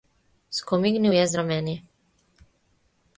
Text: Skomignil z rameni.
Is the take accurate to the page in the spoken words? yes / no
no